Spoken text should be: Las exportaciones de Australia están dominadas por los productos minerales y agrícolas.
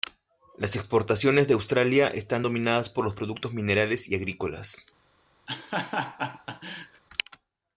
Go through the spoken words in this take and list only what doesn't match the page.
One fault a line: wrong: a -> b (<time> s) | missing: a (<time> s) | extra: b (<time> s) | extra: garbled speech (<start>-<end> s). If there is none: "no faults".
no faults